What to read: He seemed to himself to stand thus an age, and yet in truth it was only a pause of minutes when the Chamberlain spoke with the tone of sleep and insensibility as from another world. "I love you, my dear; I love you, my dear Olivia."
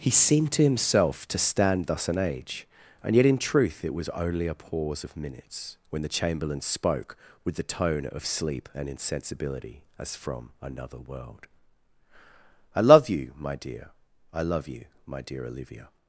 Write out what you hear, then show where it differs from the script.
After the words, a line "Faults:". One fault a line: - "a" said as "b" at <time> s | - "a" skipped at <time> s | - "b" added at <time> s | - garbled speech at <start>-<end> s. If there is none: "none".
He seemed to himself to stand thus an age, and yet in truth it was only a pause of minutes when the Chamberlain spoke with the tone of sleep and insensibility as from another world. "I love you, my dear; I love you, my dear Olivia."
Faults:
none